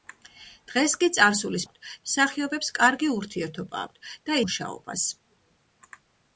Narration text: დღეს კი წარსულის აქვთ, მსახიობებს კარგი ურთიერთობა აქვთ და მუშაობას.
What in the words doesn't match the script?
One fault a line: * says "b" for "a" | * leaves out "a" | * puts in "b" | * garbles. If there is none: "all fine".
all fine